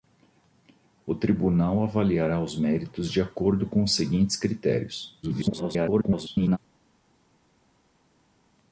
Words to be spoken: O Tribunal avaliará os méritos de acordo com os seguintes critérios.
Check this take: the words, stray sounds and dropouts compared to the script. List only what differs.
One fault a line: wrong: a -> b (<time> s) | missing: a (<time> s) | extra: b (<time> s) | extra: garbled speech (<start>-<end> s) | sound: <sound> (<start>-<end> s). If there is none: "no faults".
extra: garbled speech (5.2-6.6 s)